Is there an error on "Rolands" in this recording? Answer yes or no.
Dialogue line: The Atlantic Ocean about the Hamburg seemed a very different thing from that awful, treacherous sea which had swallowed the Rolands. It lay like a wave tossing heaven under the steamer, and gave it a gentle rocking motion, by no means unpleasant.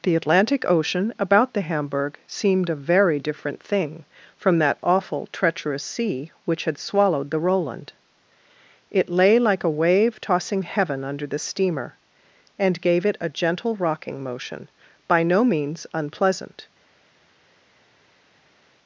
yes